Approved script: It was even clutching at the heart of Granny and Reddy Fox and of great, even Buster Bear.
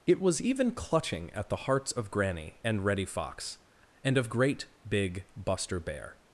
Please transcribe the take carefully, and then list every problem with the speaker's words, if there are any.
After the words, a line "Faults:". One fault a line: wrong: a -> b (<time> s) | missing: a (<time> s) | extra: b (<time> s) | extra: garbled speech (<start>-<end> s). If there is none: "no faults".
It was even clutching at the hearts of Granny and Reddy Fox and of great, big Buster Bear.
Faults:
wrong: heart -> hearts (1.7 s)
wrong: even -> big (4.9 s)